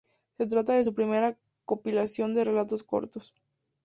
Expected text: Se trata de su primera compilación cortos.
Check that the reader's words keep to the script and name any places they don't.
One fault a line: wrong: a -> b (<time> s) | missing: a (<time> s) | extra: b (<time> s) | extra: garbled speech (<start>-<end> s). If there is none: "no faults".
extra: de relatos (2.3 s)